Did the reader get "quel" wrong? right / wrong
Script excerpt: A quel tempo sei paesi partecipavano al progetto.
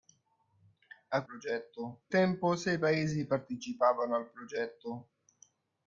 wrong